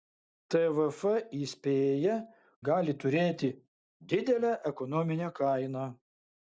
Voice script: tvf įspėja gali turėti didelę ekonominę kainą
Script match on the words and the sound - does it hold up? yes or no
yes